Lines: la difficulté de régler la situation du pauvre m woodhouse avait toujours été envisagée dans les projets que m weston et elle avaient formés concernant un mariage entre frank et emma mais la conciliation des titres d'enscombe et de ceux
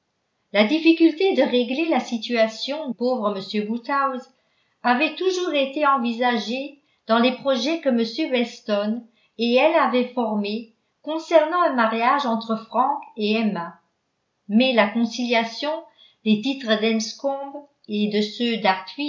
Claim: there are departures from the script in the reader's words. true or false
true